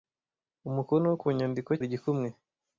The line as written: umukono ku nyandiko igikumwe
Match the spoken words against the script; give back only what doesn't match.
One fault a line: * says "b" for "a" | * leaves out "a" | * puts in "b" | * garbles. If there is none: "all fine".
all fine